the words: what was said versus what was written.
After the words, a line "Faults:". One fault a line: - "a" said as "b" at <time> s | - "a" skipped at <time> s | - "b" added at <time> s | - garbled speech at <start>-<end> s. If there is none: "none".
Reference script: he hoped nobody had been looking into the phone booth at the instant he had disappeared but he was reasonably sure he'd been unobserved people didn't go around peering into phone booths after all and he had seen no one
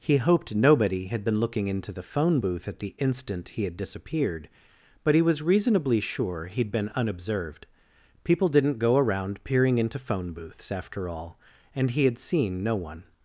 he hoped nobody had been looking into the phone booth at the instant he had disappeared but he was reasonably sure he'd been unobserved people didn't go around peering into phone booths after all and he had seen no one
Faults:
none